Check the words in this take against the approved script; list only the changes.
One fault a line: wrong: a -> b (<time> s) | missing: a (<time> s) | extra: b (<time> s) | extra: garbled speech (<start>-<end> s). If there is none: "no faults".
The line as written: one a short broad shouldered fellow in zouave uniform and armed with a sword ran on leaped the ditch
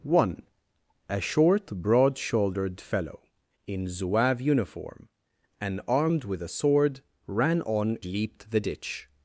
no faults